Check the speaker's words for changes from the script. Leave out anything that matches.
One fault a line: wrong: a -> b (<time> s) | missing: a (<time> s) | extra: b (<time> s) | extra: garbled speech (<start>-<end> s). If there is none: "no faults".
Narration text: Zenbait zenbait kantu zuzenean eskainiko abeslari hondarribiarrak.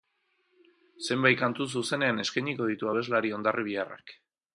missing: zenbait (1.4 s)
extra: ditu (2.7 s)